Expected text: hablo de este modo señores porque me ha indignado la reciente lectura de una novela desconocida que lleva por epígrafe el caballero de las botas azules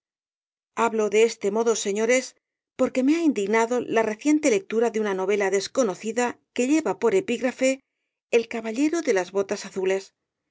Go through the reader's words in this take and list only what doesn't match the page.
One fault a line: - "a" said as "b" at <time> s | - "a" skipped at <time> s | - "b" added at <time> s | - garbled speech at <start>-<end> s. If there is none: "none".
none